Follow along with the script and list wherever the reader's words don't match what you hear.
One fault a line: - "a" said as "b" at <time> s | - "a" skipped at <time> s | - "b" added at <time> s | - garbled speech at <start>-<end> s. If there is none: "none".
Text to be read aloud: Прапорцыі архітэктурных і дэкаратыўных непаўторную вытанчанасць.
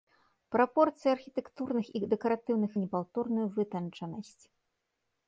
none